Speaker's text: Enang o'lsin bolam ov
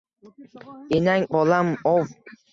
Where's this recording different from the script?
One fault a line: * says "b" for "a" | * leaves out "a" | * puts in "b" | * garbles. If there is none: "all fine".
* leaves out "o'lsin"